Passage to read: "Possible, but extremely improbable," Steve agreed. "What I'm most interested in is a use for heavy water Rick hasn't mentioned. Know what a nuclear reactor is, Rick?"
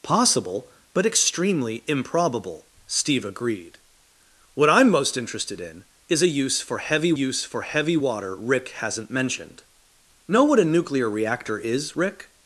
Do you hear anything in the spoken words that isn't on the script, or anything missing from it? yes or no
yes